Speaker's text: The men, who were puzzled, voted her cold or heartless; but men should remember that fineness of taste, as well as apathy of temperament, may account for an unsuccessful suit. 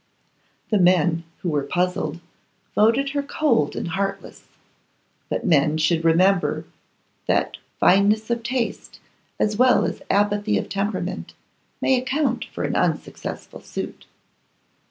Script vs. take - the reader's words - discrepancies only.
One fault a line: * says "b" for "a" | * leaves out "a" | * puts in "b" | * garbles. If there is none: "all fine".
* says "and" for "or"